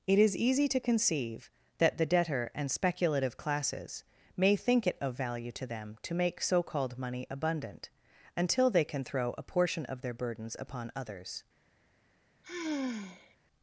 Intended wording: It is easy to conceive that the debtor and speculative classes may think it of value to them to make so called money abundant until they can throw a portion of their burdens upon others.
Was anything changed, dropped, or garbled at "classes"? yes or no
no